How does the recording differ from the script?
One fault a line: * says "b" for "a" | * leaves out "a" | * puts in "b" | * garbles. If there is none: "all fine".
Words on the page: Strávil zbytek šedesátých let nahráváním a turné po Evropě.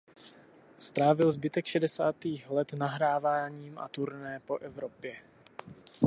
all fine